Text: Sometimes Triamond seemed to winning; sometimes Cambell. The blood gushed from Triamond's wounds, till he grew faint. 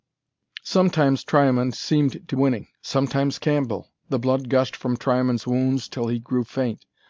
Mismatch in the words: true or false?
false